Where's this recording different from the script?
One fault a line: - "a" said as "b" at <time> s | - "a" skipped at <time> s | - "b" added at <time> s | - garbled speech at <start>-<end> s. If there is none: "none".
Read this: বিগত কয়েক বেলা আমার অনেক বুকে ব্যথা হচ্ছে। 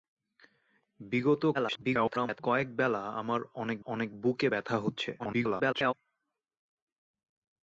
- garbled speech at 1.5-2.4 s
- "অনেক" added at 3.8 s
- garbled speech at 5.2-5.9 s